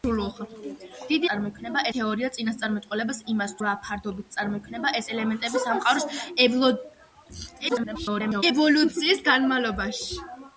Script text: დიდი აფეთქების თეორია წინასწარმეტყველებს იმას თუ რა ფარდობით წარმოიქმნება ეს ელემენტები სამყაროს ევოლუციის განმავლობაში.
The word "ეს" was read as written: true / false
true